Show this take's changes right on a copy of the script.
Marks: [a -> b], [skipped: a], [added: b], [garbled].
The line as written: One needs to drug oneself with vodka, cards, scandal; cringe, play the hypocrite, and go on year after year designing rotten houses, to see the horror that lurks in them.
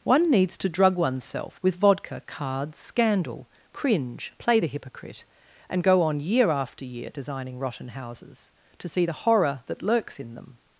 One needs to drug oneself with vodka, cards, scandal; cringe, play the hypocrite, and go on year after year designing rotten houses, to see the horror that lurks in them.